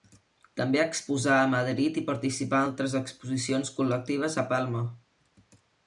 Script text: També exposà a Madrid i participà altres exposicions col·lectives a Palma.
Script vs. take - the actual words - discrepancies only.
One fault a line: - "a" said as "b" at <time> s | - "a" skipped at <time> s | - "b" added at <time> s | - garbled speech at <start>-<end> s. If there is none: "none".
none